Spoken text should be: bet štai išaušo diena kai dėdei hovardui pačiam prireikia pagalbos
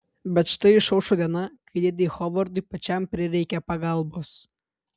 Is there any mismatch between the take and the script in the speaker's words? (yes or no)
no